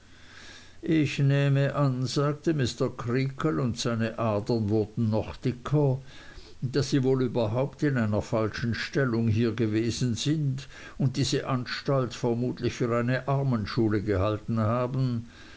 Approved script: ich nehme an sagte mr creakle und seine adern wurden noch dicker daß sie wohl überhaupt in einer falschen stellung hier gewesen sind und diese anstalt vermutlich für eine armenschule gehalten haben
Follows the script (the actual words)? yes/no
yes